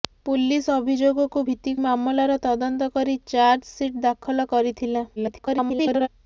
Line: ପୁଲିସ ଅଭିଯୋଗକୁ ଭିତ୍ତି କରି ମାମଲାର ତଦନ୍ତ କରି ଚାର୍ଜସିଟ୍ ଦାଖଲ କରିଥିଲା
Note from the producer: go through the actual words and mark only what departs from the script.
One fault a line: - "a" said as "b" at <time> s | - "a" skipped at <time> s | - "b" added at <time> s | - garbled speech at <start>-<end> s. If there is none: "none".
- "କରି" skipped at 1.7 s
- garbled speech at 5.2-6.1 s